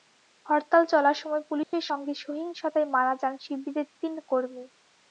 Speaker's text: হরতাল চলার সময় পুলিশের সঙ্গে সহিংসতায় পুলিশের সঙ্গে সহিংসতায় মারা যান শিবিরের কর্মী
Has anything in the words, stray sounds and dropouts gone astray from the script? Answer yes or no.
yes